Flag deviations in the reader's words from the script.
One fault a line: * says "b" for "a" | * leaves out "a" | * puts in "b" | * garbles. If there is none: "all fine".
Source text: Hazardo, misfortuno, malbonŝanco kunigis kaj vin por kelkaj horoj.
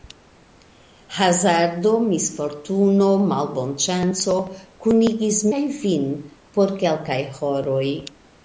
all fine